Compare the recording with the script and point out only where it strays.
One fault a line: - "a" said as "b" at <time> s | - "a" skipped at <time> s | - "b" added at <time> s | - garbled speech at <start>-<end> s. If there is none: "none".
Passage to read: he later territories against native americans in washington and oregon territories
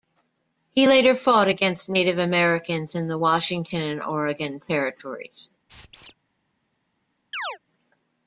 - "territories" said as "fought" at 1.1 s
- "the" added at 3.1 s